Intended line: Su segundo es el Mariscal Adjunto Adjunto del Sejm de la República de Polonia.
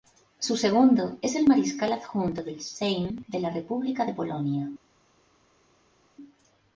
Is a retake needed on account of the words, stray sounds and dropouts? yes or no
yes